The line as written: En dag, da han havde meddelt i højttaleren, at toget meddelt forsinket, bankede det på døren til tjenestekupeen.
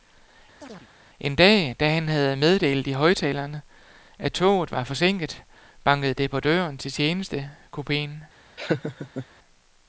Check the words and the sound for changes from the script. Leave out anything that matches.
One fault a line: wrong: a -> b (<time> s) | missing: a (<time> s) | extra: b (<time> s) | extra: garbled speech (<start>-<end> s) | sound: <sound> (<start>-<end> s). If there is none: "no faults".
sound: chirp (0.6-0.9 s)
wrong: meddelt -> var (4.7 s)
sound: laugh (8.6-9.3 s)